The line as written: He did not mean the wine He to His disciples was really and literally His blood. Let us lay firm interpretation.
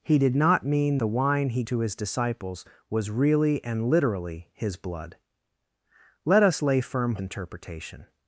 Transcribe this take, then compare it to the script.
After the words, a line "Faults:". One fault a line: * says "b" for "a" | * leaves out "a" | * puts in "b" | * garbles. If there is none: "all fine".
He did not mean the wine He to His disciples was really and literally His blood. Let us lay firm interpretation.
Faults:
all fine